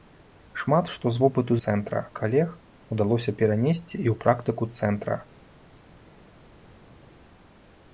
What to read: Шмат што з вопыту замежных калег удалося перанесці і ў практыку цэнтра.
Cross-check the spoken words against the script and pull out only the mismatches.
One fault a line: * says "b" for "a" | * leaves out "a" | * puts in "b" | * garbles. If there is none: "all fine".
* says "цэнтра" for "замежных"